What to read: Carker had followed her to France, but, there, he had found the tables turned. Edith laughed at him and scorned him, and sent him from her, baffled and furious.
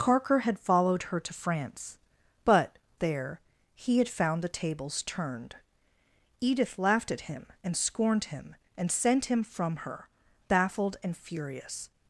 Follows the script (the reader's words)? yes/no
yes